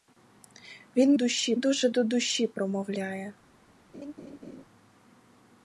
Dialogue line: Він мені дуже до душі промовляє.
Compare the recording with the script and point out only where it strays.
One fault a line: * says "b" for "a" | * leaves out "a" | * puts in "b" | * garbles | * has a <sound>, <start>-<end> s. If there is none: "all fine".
* says "душі" for "мені"
* has a laugh, 3.9-4.6 s